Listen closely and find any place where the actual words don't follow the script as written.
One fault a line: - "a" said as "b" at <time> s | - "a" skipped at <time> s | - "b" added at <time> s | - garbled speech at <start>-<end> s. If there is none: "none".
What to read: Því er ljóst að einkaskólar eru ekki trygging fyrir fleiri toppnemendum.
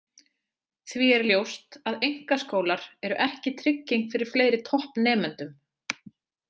none